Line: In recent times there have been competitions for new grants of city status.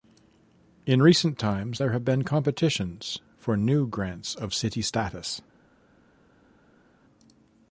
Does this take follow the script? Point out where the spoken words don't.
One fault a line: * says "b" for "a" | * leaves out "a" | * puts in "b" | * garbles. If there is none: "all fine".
all fine